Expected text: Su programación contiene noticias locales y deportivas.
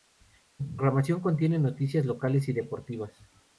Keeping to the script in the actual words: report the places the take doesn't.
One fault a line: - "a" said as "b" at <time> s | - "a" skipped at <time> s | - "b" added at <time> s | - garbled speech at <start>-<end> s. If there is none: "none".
none